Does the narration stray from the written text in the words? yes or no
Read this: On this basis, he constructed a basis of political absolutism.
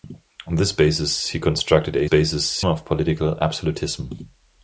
no